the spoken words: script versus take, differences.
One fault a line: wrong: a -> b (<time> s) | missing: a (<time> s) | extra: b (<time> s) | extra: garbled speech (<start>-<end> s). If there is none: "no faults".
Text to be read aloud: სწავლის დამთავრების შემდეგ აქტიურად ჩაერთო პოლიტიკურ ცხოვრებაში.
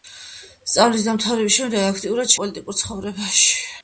missing: ჩაერთო (2.3 s)